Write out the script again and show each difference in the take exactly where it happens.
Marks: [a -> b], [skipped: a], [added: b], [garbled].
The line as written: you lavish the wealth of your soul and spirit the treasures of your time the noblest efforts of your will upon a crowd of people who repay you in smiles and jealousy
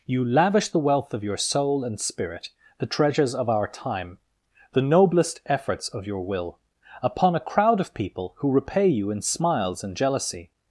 you lavish the wealth of your soul and spirit the treasures of [your -> our] time the noblest efforts of your will upon a crowd of people who repay you in smiles and jealousy